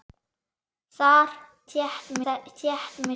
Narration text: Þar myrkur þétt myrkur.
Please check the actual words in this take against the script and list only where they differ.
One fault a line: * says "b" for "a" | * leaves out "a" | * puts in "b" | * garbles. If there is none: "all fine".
all fine